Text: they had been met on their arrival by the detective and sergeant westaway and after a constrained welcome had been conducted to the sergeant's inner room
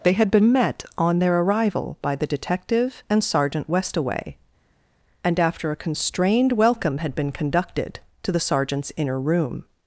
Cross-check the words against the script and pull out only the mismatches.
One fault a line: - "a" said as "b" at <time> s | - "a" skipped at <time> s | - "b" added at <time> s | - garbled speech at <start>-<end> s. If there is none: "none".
none